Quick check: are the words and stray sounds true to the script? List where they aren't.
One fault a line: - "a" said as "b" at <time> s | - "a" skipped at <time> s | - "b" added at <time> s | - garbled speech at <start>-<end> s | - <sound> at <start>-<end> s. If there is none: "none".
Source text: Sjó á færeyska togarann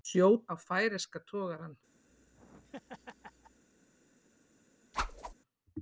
- laugh at 2.1-3.6 s
- whoosh at 4.9-5.3 s